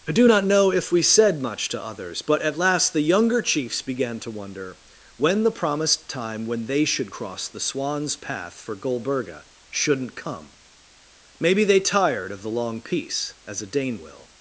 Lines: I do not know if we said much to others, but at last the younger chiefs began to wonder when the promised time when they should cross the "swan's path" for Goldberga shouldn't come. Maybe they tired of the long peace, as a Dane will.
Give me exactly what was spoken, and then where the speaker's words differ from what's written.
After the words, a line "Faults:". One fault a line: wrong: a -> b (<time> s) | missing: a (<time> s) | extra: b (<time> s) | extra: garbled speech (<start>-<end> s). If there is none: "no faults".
I do not know if we said much to others, but at last the younger chiefs began to wonder when the promised time when they should cross the "swan's path" for Goldberga shouldn't come. Maybe they tired of the long peace, as a Dane will.
Faults:
no faults